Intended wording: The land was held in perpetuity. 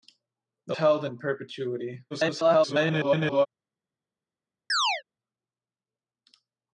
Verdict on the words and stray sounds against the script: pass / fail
fail